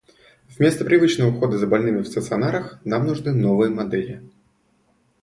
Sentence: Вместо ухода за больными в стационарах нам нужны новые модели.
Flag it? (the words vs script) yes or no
yes